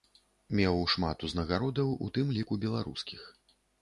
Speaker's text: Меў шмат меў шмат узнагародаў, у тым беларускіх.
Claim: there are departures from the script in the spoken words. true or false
true